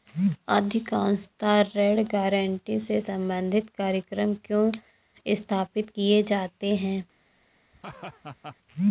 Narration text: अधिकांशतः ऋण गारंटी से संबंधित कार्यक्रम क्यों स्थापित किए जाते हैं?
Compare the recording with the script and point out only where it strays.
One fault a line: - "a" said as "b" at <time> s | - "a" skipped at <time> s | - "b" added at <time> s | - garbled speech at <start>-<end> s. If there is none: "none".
none